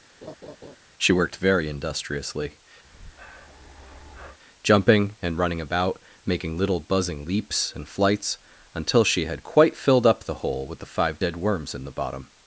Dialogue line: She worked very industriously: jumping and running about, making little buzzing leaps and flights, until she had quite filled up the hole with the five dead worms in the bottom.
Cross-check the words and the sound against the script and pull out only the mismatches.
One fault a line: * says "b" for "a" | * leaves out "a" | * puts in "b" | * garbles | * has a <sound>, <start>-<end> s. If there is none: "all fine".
* has a laugh, 0.2-0.8 s
* has a breath, 2.8-4.4 s